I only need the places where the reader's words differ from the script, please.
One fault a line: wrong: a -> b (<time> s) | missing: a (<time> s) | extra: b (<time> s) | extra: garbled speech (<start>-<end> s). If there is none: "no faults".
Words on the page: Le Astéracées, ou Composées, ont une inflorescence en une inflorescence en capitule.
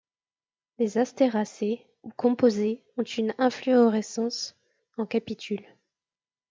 wrong: Le -> Les (0.8 s)
missing: une inflorescence en (5.1 s)